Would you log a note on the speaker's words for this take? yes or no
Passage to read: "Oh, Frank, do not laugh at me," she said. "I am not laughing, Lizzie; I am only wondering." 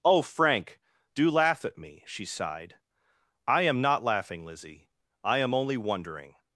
yes